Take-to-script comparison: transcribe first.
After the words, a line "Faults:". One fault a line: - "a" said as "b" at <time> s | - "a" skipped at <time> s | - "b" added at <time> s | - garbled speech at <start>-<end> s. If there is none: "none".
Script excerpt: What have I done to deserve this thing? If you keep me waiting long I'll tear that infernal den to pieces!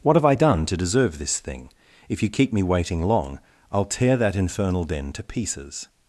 What have I done to deserve this thing? If you keep me waiting long I'll tear that infernal den to pieces!
Faults:
none